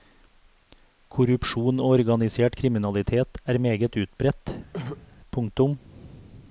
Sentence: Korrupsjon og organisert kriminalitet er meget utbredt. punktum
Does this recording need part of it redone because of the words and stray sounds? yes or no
yes